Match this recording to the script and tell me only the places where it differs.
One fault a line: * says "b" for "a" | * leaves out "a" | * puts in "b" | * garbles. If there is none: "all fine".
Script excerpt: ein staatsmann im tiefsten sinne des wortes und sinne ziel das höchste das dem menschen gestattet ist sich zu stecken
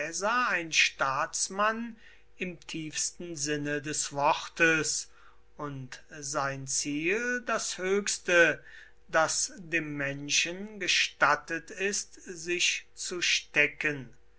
* says "sein" for "sinne"